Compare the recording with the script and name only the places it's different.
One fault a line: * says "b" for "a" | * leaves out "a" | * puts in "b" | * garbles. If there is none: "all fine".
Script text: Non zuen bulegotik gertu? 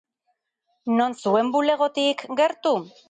all fine